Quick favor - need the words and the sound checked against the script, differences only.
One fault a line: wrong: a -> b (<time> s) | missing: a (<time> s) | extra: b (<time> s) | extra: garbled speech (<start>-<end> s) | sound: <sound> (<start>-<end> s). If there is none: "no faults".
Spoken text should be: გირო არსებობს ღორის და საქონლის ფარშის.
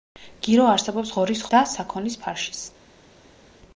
no faults